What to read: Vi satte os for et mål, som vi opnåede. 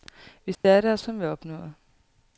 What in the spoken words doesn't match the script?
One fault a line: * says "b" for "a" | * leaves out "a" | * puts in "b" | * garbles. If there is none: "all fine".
* leaves out "for et mål"